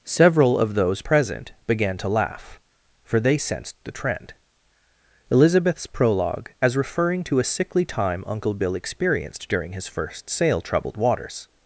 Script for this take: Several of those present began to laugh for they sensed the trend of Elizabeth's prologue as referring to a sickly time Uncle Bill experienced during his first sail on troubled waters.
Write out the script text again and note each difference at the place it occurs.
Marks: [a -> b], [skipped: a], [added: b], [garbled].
Several of those present began to laugh for they sensed the trend [skipped: of] Elizabeth's prologue as referring to a sickly time Uncle Bill experienced during his first sail [skipped: on] troubled waters.